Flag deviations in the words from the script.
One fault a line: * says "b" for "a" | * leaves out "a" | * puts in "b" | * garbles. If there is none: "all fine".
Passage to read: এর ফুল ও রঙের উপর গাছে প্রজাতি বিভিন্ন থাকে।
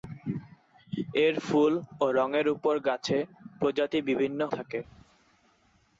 all fine